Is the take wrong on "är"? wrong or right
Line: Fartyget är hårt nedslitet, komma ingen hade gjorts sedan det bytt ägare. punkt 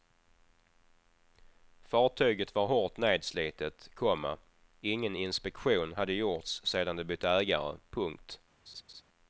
wrong